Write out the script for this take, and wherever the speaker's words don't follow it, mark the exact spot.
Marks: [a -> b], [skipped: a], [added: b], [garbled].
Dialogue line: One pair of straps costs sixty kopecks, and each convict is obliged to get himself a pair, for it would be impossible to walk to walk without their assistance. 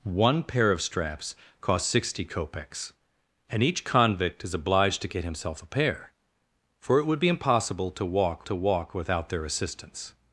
One pair of straps costs sixty kopecks, and each convict is obliged to get himself a pair, for it would be impossible to walk to walk without their assistance.